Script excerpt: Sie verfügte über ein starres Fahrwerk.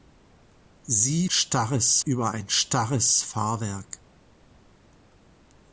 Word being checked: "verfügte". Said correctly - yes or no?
no